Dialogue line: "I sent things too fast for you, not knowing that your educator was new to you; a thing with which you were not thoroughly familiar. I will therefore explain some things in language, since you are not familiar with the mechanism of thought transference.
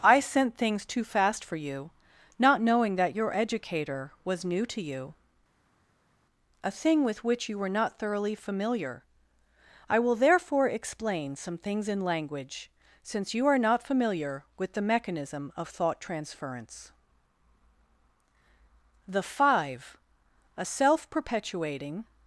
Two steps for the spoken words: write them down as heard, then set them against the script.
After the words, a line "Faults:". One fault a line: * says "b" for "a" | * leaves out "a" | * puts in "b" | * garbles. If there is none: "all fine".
"I sent things too fast for you, not knowing that your educator was new to you; a thing with which you were not thoroughly familiar. I will therefore explain some things in language, since you are not familiar with the mechanism of thought transference. The Five, a self perpetuating
Faults:
* puts in "The Five a self perpetuating"